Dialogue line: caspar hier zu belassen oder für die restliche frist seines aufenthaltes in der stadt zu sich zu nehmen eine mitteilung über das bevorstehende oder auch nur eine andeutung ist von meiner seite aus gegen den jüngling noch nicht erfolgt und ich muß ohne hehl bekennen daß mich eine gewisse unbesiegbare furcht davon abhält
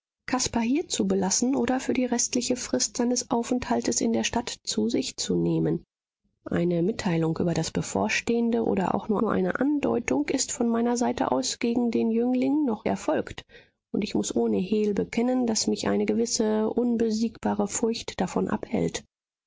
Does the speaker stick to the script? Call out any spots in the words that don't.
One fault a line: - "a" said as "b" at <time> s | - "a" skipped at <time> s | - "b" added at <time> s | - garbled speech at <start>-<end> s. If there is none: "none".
- "nur" added at 9.2 s
- "nicht" skipped at 12.9 s